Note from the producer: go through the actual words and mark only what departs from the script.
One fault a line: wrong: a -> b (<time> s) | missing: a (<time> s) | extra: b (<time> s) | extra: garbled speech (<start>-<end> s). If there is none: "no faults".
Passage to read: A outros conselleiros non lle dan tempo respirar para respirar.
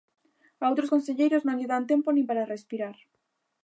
wrong: respirar -> nin (2.1 s)